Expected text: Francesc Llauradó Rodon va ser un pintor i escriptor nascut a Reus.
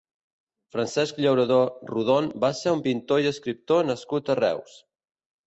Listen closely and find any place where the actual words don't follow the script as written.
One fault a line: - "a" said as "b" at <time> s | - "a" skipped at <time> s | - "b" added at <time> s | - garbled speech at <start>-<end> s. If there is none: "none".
none